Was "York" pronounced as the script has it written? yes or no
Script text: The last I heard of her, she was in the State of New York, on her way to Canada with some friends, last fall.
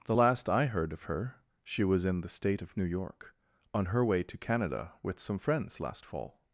yes